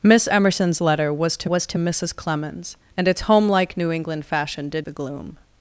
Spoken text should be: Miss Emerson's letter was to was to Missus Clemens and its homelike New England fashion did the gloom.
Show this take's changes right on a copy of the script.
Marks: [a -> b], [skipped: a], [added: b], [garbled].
Miss Emerson's letter was to was to Missus Clemens and its homelike New England fashion did the gloom.